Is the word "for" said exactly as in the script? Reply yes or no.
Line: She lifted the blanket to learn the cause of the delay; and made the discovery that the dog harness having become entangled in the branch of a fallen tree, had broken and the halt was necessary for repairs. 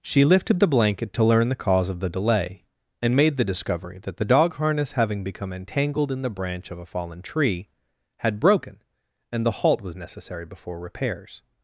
no